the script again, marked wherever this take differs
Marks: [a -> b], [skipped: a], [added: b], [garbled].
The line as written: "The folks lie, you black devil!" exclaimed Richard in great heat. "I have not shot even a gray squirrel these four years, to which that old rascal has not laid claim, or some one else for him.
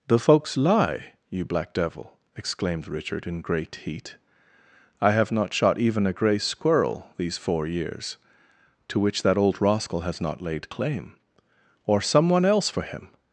"The folks lie, you black devil!" exclaimed Richard in great heat. "I have not shot even a gray squirrel these four years, to which that old rascal has not laid claim, or some one else for him.